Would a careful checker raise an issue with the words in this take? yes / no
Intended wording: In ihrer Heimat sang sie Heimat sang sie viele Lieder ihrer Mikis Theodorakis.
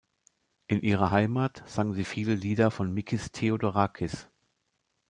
yes